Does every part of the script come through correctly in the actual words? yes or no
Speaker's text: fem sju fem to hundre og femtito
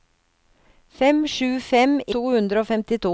yes